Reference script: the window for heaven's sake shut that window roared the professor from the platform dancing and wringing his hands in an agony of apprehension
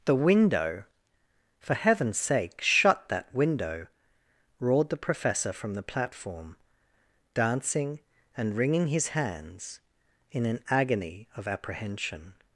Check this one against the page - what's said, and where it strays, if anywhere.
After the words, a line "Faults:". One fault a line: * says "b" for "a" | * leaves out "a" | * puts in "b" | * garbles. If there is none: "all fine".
the window for heaven's sake shut that window roared the professor from the platform dancing and wringing his hands in an agony of apprehension
Faults:
all fine